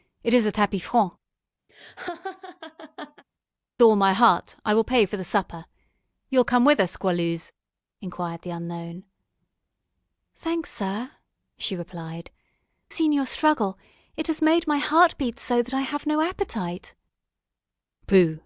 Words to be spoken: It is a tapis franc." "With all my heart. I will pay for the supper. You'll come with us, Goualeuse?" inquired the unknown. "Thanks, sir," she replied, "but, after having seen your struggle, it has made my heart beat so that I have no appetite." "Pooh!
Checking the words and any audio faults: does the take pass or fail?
fail